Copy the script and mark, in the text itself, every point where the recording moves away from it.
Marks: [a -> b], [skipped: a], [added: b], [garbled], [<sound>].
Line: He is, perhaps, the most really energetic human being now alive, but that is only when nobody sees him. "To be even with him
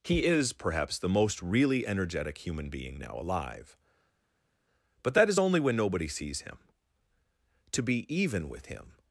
He is, perhaps, the most really energetic human being now alive, but that is only when nobody sees him. "To be even with him